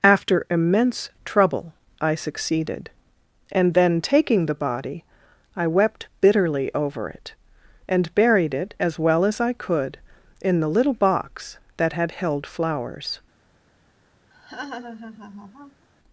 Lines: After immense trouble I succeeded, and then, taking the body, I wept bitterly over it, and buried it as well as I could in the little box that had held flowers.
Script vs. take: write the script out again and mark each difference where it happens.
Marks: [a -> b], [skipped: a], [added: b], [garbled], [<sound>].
After immense trouble I succeeded, and then, taking the body, I wept bitterly over it, and buried it as well as I could in the little box that had held flowers. [laugh]